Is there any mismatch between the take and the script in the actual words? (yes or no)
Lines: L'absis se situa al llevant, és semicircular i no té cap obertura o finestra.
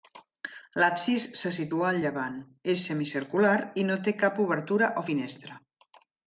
no